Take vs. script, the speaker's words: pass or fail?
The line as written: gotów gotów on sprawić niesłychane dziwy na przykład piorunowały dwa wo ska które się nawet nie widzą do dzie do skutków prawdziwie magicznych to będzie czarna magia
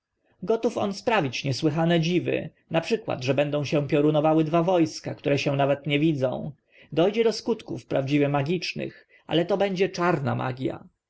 fail